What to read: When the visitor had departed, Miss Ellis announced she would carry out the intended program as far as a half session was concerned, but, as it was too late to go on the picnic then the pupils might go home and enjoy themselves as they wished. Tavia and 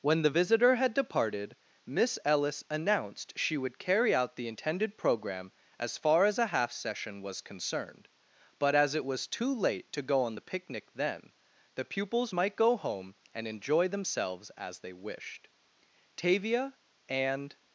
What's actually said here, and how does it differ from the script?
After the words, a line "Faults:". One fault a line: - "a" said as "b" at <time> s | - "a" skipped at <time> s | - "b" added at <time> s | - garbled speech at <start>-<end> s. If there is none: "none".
When the visitor had departed, Miss Ellis announced she would carry out the intended program as far as a half session was concerned, but, as it was too late to go on the picnic then the pupils might go home and enjoy themselves as they wished. Tavia and
Faults:
none